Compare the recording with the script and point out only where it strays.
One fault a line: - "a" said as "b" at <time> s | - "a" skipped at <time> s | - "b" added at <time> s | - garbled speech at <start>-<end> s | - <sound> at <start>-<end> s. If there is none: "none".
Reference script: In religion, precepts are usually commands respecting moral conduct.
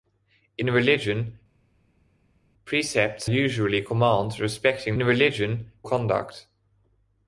- "are" skipped at 3.3 s
- "moral" said as "religion" at 5.0 s